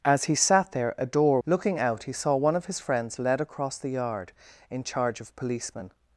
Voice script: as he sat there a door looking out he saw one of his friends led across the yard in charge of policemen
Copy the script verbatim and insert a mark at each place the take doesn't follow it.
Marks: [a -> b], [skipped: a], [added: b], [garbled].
as he sat there a door looking out he saw one of his friends led across the yard in charge of policemen